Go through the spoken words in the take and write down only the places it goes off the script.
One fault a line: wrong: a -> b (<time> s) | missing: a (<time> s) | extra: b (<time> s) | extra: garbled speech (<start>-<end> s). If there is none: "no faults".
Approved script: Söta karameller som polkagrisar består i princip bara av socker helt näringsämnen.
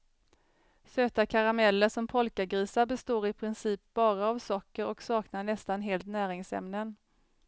extra: och saknar nästan (4.8 s)